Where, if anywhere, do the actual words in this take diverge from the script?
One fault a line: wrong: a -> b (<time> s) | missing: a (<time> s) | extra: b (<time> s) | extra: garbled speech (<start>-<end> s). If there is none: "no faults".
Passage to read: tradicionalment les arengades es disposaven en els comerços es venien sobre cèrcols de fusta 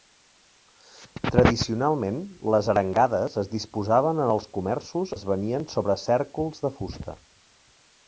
no faults